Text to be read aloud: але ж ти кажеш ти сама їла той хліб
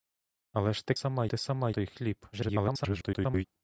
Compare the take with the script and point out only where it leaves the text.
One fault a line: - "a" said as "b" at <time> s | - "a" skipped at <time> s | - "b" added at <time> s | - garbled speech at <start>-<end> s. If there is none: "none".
- "кажеш" said as "сама" at 0.9 s
- "їла" skipped at 1.7 s
- garbled speech at 2.3-3.5 s